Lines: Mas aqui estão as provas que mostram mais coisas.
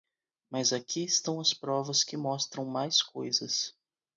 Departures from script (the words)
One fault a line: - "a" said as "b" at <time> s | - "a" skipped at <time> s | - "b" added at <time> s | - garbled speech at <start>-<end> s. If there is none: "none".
none